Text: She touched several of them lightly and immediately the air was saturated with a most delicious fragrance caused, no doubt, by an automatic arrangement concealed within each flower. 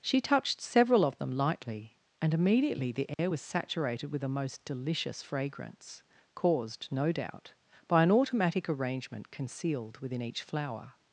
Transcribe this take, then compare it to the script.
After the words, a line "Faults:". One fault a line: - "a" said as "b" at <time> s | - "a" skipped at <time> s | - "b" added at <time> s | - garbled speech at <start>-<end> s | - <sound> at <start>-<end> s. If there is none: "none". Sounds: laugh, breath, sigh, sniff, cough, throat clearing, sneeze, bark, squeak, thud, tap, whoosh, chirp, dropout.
She touched several of them lightly and immediately the air was saturated with a most delicious fragrance caused, no doubt, by an automatic arrangement concealed within each flower.
Faults:
- dropout at 3.1-3.2 s